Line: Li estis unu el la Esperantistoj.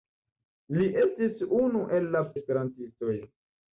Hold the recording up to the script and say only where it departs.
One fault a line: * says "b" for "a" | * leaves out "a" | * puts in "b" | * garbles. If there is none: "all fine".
all fine